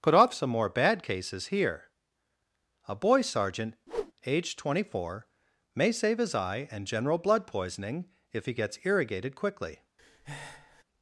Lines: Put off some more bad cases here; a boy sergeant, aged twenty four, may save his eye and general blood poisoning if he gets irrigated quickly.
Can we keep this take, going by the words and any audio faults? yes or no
no